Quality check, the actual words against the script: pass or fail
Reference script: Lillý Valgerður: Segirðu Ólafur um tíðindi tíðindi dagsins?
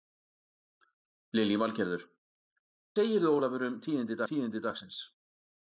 pass